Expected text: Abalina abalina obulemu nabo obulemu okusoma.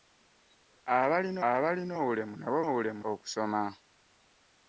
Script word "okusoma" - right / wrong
right